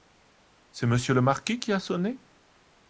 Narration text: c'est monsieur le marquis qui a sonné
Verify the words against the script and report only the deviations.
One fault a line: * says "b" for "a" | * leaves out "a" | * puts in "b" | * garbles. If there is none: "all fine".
all fine